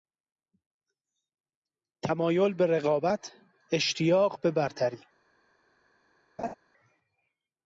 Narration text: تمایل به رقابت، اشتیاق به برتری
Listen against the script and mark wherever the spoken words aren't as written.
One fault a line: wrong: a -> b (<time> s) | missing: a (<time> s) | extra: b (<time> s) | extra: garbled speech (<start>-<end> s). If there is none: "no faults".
no faults